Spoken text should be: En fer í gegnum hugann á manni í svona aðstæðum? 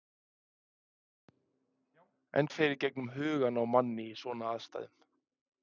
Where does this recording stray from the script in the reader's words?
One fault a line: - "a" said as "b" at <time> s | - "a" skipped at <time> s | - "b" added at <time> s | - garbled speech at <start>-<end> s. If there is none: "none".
none